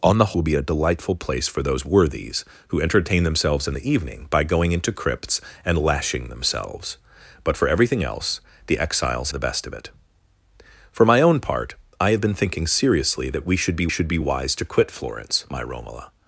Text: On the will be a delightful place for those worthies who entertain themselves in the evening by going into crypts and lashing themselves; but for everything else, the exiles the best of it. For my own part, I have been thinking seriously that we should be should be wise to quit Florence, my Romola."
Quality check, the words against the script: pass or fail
pass